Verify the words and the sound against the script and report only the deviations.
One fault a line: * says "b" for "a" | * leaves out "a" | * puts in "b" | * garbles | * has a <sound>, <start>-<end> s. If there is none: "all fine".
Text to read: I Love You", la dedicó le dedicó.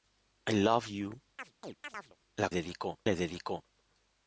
* has a chirp, 1.4-2.2 s